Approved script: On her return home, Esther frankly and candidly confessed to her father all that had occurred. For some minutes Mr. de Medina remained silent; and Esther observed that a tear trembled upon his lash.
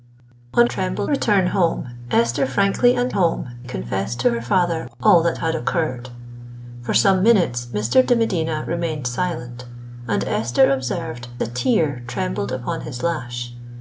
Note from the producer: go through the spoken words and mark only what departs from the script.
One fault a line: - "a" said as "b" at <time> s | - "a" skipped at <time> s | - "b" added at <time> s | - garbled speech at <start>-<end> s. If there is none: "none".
- "her" said as "trembled" at 0.7 s
- "candidly" said as "home" at 3.1 s
- "that" skipped at 11.3 s